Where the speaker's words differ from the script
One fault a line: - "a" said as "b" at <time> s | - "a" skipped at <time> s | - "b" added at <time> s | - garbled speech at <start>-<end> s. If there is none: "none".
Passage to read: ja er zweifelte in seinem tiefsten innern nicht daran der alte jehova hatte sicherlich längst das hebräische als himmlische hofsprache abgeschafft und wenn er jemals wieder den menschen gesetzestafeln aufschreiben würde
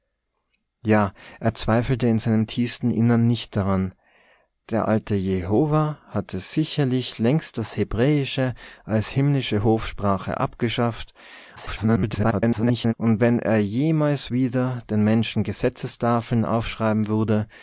- garbled speech at 11.6-12.9 s